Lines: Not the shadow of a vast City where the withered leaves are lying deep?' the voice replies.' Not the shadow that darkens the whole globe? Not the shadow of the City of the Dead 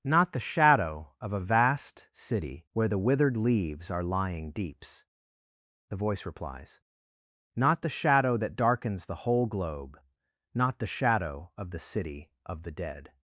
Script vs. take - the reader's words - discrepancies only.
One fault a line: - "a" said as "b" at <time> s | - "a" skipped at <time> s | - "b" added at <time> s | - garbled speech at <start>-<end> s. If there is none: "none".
- "deep" said as "deeps" at 4.5 s